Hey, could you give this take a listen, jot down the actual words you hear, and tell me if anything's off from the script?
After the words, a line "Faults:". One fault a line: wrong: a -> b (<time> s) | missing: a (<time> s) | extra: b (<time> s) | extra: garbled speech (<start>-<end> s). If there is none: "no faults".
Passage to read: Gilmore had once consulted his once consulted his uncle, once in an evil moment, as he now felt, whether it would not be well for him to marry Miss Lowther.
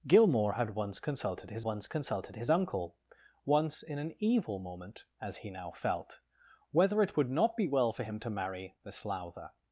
Gilmore had once consulted his once consulted his uncle, once in an evil moment, as he now felt, whether it would not be well for him to marry Miss Lowther.
Faults:
no faults